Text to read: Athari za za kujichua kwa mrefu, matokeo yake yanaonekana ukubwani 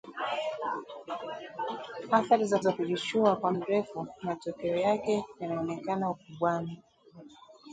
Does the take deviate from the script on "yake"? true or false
false